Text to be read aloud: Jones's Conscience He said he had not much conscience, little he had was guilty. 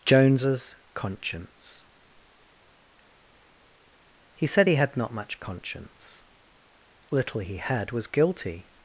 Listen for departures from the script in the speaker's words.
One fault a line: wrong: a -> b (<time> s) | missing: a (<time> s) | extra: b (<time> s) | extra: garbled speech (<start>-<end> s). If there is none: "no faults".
no faults